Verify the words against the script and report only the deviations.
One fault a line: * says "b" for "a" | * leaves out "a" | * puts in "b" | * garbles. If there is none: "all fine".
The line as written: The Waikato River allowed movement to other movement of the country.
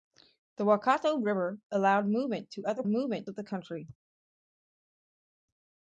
all fine